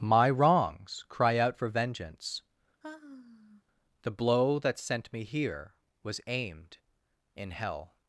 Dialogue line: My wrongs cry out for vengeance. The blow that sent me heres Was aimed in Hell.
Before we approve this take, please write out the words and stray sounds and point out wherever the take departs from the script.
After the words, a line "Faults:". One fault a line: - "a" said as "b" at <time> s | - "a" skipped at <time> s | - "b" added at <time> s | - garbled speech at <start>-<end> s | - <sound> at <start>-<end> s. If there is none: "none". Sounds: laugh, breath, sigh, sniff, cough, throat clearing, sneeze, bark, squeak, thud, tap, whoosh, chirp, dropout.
My wrongs cry out for vengeance. The blow that sent me here Was aimed in Hell.
Faults:
- sigh at 2.8-3.6 s
- "heres" said as "here" at 5.2 s